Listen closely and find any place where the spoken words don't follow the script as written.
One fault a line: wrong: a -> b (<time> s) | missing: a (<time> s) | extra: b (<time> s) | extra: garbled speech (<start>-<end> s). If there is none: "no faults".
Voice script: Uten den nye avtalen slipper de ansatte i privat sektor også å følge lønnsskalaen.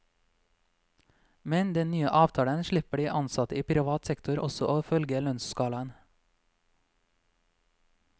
wrong: Uten -> Med (1.4 s)